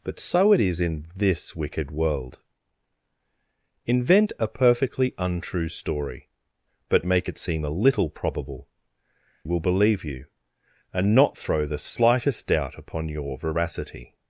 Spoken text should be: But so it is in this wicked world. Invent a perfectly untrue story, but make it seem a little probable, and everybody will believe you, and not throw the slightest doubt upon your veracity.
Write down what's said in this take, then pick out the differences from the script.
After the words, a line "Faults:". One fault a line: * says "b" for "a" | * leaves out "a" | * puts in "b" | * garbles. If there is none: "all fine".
But so it is in this wicked world. Invent a perfectly untrue story, but make it seem a little probable, will believe you, and not throw the slightest doubt upon your veracity.
Faults:
* leaves out "and everybody"